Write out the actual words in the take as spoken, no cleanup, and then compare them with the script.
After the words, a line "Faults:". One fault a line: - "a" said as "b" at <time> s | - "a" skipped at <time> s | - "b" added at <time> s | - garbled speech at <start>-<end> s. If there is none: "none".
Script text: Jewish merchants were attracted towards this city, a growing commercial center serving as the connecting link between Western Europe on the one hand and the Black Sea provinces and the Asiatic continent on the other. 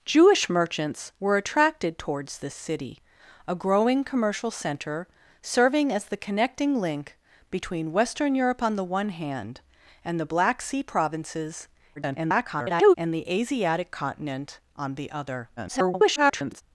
Jewish merchants were attracted towards this city, a growing commercial center serving as the connecting link between Western Europe on the one hand and the Black Sea provinces [garbled] and the Asiatic continent on the other. [garbled]
Faults:
- garbled speech at 12.0-12.9 s
- garbled speech at 15.6-16.6 s